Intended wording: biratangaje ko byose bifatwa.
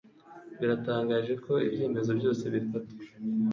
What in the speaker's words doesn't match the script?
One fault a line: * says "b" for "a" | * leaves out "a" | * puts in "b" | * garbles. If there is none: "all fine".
* puts in "ibyemezo"